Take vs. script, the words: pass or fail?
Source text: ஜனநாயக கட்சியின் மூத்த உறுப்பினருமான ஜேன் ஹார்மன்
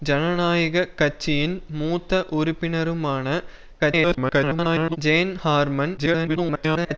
fail